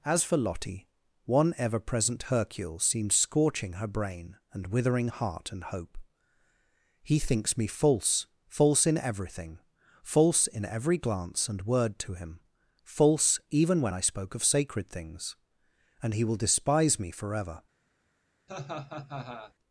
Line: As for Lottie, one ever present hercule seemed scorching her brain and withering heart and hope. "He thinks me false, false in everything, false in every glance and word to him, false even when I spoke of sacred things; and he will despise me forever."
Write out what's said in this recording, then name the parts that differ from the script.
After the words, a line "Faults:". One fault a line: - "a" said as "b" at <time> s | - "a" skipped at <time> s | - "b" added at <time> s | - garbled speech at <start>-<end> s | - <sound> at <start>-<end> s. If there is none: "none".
As for Lottie, one ever present hercule seemed scorching her brain and withering heart and hope. "He thinks me false, false in everything, false in every glance and word to him, false even when I spoke of sacred things; and he will despise me forever."
Faults:
- laugh at 18.5-19.5 s